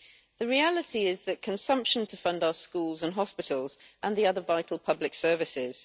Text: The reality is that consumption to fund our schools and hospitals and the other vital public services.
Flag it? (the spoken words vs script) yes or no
no